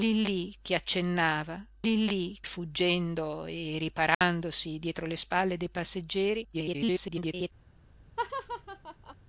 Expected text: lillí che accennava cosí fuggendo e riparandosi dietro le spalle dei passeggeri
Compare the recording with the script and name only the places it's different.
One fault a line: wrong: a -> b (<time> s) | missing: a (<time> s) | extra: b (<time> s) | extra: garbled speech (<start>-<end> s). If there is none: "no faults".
wrong: cosí -> lillí (1.8 s)
extra: garbled speech (6.5-7.5 s)